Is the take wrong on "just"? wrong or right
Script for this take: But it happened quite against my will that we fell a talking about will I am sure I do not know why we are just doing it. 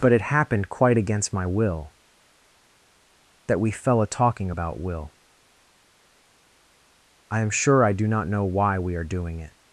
wrong